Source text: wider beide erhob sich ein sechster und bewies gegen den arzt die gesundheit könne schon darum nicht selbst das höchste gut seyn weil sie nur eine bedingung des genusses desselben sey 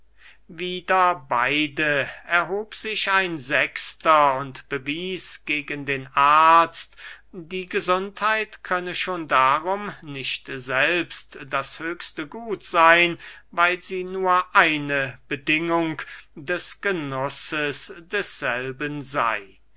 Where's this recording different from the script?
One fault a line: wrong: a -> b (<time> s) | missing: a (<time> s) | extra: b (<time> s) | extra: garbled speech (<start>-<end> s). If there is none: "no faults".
no faults